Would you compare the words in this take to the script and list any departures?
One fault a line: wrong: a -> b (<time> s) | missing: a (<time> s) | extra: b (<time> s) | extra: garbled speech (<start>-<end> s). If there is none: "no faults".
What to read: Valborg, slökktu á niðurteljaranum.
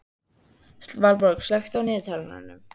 no faults